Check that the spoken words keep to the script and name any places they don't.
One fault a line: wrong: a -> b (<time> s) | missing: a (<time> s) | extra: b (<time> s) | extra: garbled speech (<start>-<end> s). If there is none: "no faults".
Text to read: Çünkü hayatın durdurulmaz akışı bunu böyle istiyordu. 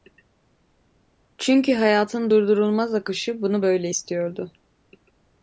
no faults